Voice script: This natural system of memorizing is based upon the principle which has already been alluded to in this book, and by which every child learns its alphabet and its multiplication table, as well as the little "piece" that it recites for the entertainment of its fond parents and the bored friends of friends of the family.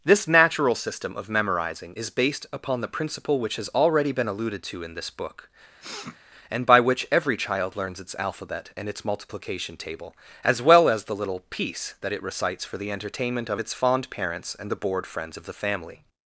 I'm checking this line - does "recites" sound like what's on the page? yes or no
yes